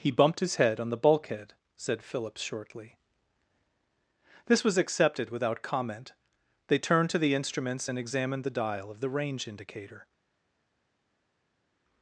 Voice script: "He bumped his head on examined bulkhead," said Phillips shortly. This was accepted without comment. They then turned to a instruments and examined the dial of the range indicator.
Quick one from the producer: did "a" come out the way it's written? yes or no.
no